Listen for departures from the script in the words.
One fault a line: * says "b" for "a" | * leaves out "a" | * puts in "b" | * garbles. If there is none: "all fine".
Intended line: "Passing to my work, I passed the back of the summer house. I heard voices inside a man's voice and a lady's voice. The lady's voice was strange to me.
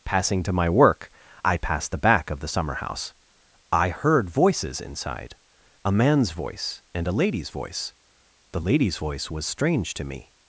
all fine